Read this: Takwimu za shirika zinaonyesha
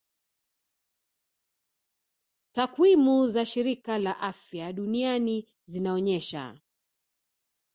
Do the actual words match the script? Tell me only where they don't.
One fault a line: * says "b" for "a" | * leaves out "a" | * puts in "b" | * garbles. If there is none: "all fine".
* puts in "la afya duniani"